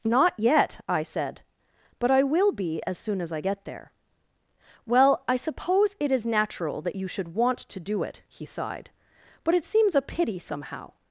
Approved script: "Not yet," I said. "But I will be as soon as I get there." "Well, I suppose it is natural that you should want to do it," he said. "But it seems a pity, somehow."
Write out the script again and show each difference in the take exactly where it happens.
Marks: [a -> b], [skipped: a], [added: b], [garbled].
"Not yet," I said. "But I will be as soon as I get there." "Well, I suppose it is natural that you should want to do it," he [said. -> sighed] "But it seems a pity, somehow."